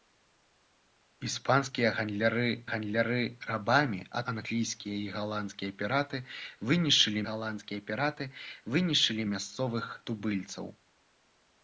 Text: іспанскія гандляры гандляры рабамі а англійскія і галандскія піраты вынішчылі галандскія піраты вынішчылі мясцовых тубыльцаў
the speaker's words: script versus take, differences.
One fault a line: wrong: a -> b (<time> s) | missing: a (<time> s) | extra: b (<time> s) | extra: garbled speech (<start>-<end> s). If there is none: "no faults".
no faults